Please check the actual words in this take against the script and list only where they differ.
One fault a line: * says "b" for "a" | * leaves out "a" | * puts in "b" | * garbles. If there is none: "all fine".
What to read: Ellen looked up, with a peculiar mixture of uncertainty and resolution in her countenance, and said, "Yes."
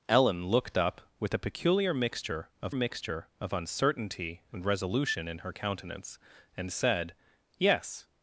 * puts in "mixture of"